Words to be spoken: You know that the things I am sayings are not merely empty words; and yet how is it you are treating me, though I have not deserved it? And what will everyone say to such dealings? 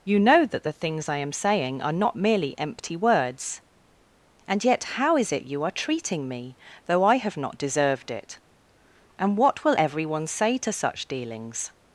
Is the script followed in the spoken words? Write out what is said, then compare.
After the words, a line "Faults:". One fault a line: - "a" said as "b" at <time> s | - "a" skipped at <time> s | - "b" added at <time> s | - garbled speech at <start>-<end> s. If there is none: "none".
You know that the things I am saying are not merely empty words; and yet how is it you are treating me, though I have not deserved it? And what will everyone say to such dealings?
Faults:
- "sayings" said as "saying" at 1.3 s